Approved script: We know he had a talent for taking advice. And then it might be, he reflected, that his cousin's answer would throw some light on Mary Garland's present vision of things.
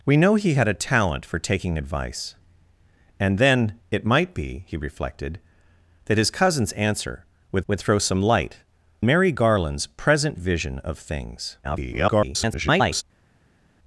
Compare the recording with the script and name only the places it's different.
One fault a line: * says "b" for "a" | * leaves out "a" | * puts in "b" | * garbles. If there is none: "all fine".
* puts in "would"
* leaves out "on"
* garbles